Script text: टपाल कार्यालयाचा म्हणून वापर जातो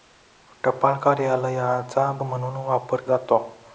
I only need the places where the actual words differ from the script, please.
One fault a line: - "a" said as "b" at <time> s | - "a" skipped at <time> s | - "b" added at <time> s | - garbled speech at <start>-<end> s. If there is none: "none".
none